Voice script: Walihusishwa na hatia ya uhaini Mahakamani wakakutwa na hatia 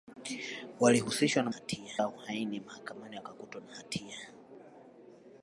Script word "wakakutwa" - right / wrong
right